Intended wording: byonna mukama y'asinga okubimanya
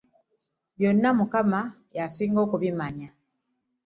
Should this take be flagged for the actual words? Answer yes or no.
no